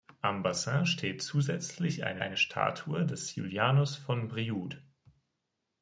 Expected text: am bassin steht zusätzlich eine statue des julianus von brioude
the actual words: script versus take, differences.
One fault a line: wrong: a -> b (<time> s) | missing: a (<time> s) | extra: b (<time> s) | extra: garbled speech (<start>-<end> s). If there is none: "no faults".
extra: eine (2.2 s)